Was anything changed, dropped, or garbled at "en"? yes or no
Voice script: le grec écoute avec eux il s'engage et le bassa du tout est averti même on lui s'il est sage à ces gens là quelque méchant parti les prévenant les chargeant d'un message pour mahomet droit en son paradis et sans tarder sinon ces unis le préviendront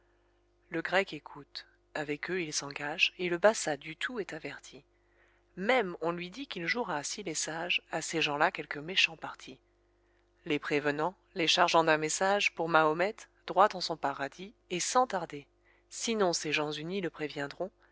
no